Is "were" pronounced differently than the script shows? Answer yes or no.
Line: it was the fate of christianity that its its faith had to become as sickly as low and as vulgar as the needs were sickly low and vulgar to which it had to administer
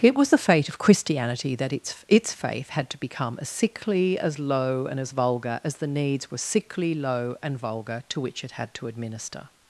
no